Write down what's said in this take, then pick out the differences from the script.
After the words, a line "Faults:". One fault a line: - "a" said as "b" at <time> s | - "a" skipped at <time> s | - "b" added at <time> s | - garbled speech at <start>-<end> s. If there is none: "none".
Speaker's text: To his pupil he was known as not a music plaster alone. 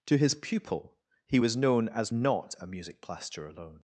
To his pupil he was known as not a music plaster alone.
Faults:
none